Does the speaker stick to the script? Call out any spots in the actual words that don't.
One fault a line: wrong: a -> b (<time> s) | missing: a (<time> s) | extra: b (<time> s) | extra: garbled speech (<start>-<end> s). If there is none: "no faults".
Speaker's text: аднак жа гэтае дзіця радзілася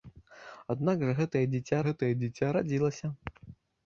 extra: гэтае дзіця (1.9 s)